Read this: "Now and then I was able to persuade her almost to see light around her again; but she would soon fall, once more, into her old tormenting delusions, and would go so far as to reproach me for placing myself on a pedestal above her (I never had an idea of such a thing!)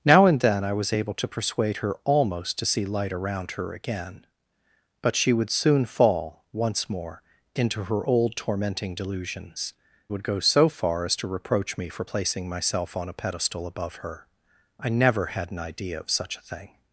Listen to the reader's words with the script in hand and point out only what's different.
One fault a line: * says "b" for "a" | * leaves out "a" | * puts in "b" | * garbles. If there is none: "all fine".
* leaves out "and"